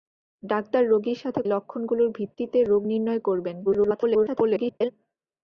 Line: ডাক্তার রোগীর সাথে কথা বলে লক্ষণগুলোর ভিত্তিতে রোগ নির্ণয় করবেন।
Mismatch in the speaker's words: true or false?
true